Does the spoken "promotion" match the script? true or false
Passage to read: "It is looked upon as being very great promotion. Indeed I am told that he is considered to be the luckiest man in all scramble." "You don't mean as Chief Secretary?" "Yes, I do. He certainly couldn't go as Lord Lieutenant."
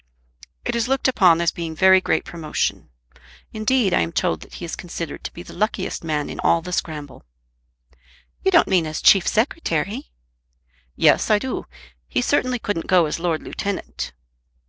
true